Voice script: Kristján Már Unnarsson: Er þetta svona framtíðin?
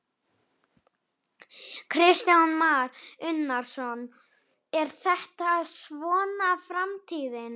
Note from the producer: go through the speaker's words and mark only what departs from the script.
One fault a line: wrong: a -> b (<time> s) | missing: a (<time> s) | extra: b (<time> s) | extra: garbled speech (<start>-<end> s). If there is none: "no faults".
no faults